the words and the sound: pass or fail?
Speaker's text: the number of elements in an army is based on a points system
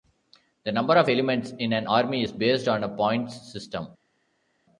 pass